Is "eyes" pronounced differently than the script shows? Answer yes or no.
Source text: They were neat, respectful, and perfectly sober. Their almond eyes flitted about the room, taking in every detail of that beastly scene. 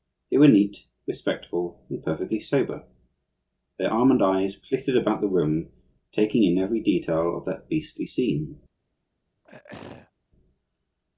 no